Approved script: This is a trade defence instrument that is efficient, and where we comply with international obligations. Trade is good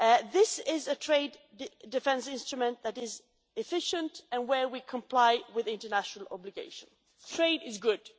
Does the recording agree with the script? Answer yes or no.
yes